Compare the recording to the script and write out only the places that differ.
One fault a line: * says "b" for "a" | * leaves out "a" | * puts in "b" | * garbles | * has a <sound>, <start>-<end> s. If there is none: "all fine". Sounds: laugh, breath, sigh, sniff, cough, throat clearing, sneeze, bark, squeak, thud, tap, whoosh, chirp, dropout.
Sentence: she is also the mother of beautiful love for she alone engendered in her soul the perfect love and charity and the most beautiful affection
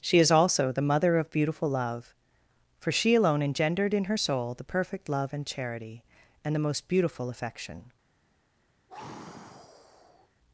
* has a sigh, 8.9-10.3 s